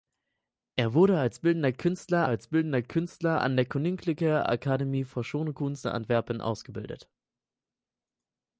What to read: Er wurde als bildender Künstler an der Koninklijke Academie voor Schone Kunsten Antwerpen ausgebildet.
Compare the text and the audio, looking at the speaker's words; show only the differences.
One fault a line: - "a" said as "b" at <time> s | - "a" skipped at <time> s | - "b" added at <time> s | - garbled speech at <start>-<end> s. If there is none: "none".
- "als bildender Künstler" added at 2.3 s